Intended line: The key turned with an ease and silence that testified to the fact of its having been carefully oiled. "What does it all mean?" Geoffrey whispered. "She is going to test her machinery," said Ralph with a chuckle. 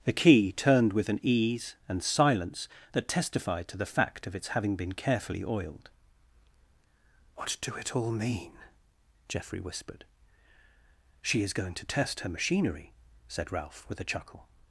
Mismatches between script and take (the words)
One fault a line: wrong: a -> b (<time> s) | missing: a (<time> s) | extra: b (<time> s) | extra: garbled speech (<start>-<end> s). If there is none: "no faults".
wrong: does -> do (7.6 s)